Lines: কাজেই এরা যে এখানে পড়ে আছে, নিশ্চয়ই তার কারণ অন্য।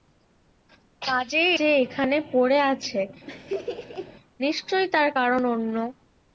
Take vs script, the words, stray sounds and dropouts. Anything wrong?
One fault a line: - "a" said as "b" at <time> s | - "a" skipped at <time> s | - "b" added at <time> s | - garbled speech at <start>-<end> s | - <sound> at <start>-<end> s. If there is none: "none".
- "এরা" skipped at 1.5 s
- laugh at 3.3-4.1 s